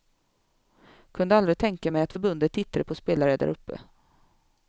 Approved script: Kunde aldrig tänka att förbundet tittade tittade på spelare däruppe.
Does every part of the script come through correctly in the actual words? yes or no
no